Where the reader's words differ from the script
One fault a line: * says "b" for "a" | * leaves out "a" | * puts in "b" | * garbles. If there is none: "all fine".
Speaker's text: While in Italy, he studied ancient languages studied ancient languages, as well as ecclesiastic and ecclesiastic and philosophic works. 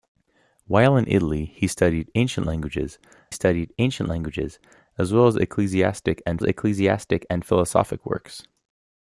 all fine